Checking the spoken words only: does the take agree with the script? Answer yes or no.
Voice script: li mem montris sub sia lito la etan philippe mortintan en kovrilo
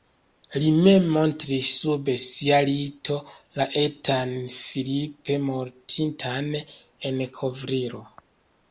yes